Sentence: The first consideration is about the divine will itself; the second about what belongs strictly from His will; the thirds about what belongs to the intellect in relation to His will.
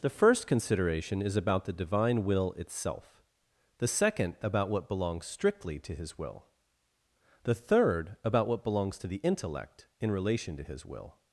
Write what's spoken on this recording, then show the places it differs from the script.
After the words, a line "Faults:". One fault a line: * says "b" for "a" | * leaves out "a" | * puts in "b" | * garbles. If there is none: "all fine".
The first consideration is about the divine will itself; the second about what belongs strictly to His will; the third about what belongs to the intellect in relation to His will.
Faults:
* says "to" for "from"
* says "third" for "thirds"